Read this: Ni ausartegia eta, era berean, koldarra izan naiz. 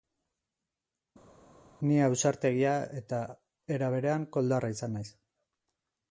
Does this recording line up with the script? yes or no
yes